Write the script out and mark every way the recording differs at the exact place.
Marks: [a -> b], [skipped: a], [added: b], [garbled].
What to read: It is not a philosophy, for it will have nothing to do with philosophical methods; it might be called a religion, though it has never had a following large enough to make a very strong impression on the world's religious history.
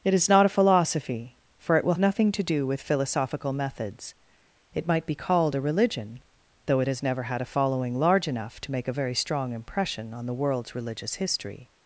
It is not a philosophy, for it will [skipped: have] nothing to do with philosophical methods; it might be called a religion, though it has never had a following large enough to make a very strong impression on the world's religious history.